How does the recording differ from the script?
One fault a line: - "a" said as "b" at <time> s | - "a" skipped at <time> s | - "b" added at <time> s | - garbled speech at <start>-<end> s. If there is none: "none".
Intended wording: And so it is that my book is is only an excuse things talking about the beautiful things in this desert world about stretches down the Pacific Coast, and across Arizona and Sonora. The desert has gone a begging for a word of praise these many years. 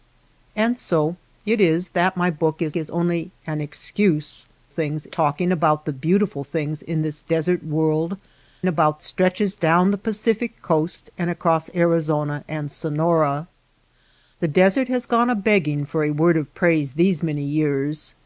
none